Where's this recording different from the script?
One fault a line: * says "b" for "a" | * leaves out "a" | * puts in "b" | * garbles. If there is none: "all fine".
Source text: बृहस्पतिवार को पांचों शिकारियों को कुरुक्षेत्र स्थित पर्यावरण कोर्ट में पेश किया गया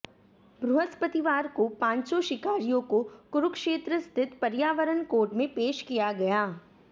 all fine